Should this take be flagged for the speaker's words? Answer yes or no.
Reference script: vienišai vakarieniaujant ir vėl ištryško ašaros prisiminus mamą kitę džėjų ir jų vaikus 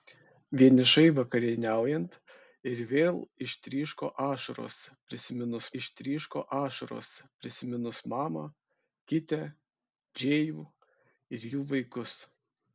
yes